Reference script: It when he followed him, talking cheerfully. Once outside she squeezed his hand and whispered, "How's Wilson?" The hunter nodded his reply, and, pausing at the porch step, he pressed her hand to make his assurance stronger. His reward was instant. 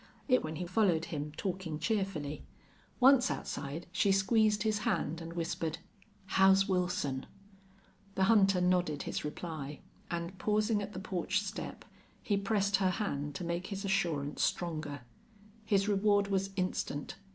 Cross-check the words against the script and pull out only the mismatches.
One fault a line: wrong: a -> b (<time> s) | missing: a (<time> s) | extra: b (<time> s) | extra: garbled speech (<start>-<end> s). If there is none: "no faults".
no faults